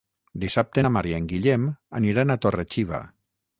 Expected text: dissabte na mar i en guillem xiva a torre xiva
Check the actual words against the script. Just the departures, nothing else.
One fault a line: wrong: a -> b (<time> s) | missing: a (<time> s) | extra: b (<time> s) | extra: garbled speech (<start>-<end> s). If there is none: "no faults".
wrong: xiva -> aniran (2.0 s)